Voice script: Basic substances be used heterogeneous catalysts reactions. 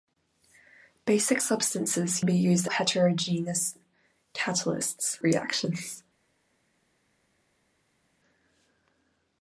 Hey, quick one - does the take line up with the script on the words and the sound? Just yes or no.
yes